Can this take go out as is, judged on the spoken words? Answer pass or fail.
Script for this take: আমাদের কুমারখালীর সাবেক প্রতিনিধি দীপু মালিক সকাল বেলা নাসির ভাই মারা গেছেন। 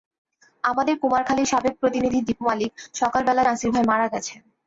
pass